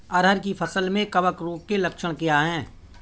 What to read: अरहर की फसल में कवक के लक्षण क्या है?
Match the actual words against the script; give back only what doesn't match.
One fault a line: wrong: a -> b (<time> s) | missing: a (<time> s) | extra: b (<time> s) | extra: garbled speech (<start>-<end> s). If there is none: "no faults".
extra: रोग (1.4 s)